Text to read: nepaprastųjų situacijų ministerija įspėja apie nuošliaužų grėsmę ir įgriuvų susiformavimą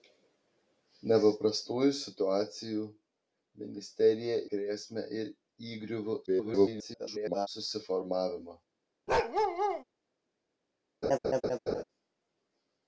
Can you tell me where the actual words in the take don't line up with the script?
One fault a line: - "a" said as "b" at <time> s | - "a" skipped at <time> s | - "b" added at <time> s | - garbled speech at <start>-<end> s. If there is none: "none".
- "įspėja apie nuošliaužų" skipped at 4.4 s
- garbled speech at 6.3-7.5 s